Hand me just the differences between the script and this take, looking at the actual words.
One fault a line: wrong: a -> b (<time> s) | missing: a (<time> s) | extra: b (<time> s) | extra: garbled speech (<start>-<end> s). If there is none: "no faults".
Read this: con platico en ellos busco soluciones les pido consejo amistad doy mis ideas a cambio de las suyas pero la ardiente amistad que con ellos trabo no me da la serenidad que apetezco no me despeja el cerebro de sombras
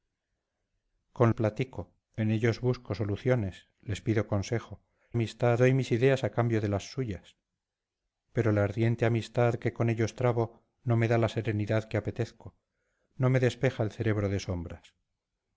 no faults